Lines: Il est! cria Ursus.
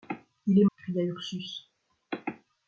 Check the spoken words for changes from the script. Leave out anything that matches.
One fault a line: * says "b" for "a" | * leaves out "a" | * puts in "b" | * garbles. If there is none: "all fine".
all fine